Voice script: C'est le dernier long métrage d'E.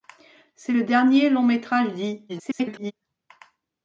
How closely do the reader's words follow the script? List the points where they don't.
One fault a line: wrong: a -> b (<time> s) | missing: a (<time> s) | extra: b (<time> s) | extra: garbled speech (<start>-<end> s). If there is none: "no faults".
extra: garbled speech (2.3-2.9 s)